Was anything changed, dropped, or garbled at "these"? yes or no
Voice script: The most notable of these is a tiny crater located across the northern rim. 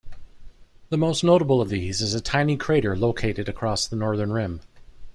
no